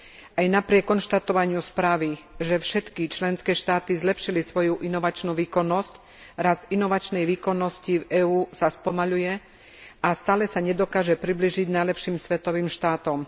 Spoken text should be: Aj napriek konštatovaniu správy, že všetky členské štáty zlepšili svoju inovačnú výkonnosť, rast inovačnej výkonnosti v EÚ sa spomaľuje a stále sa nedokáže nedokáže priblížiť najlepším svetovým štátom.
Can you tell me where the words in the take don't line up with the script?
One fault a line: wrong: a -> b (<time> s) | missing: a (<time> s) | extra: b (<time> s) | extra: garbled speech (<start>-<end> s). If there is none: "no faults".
missing: nedokáže (11.2 s)